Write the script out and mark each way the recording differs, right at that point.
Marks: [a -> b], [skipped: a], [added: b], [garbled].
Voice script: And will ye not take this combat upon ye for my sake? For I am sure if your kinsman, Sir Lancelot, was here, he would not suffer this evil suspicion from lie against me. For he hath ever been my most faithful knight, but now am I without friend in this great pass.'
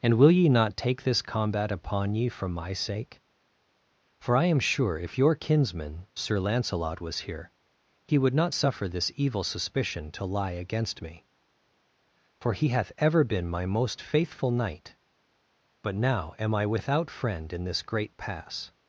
And will ye not take this combat upon ye for my sake? For I am sure if your kinsman, Sir Lancelot, was here, he would not suffer this evil suspicion [from -> to] lie against me. For he hath ever been my most faithful knight, but now am I without friend in this great pass.'